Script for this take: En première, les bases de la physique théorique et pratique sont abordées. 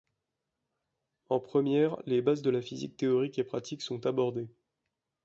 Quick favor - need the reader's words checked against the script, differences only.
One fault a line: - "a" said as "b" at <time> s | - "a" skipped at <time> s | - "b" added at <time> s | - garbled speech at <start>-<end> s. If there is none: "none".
none